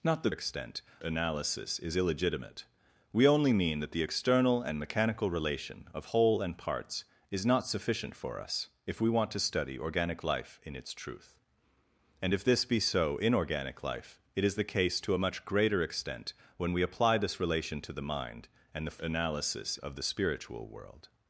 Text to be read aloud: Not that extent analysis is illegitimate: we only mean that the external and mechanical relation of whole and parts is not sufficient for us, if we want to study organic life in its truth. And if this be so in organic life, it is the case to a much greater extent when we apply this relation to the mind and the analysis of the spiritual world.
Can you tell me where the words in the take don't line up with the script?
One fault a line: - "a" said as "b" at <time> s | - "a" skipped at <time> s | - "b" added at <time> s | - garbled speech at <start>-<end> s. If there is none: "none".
none